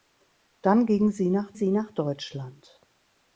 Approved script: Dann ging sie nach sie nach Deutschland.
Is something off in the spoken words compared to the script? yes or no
no